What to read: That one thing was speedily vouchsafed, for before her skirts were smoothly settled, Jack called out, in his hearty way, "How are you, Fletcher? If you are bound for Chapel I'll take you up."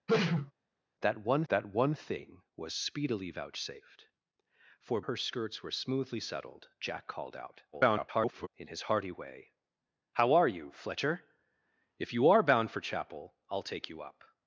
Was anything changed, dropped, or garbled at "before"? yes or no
yes